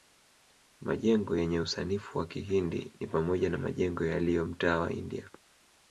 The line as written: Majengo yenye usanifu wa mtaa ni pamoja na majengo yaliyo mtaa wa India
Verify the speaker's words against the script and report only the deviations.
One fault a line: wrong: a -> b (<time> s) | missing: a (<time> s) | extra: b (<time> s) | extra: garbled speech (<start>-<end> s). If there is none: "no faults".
wrong: mtaa -> kihindi (2.3 s)